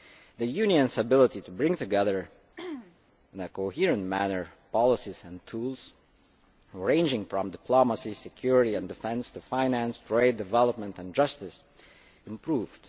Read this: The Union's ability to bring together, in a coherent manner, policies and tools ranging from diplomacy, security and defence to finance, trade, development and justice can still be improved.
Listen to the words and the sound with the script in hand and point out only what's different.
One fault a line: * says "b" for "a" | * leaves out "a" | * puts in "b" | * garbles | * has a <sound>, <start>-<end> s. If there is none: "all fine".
* has a throat clearing, 2.6-3.0 s
* leaves out "can still be"